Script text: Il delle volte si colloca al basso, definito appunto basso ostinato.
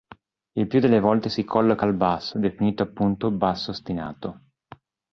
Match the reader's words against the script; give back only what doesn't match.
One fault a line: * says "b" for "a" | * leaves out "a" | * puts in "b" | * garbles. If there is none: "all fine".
* puts in "più"